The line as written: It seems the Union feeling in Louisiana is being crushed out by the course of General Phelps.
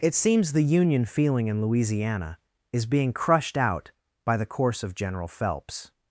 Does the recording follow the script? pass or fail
pass